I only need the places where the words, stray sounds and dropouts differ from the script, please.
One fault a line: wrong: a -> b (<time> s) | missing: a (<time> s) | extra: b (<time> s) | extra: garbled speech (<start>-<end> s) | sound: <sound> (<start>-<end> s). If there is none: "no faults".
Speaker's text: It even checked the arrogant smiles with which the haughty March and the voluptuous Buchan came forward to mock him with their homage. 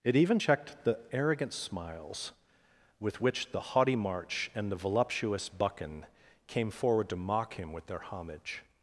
no faults